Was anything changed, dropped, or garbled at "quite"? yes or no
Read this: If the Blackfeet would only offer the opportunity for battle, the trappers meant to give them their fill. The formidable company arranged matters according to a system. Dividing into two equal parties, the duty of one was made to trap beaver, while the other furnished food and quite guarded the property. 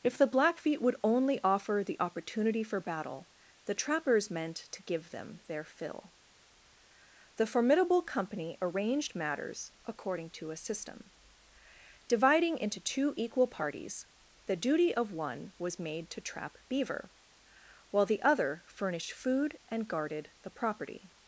yes